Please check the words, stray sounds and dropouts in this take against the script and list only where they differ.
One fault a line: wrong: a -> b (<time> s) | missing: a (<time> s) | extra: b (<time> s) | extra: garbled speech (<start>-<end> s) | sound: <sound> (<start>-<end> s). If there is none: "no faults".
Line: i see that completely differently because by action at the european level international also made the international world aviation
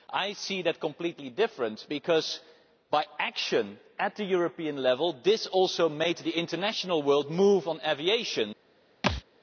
wrong: international -> this (5.2 s)
extra: move on (7.3 s)
sound: thud (9.0-9.2 s)